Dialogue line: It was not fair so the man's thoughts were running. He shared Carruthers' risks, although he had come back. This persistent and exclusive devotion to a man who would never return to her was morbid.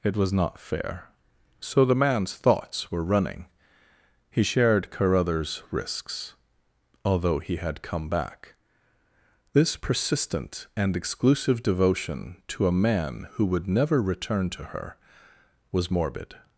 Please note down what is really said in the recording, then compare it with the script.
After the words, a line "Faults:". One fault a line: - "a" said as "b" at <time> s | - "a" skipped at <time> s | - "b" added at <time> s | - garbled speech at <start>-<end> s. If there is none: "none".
It was not fair so the man's thoughts were running. He shared Carruthers' risks, although he had come back. This persistent and exclusive devotion to a man who would never return to her was morbid.
Faults:
none